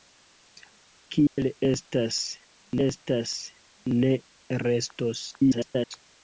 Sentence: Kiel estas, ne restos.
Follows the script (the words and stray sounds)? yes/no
no